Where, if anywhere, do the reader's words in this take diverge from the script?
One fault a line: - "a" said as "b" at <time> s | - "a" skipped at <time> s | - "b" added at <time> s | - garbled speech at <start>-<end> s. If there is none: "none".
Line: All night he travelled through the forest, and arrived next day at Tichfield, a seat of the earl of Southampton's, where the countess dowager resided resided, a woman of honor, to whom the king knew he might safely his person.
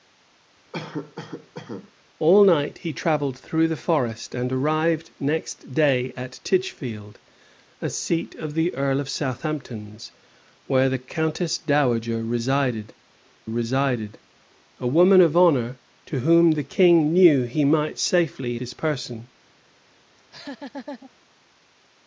none